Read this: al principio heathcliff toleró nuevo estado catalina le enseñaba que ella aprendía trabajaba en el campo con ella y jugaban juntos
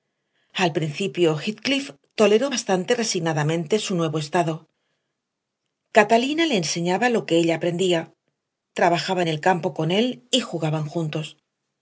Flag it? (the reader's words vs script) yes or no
yes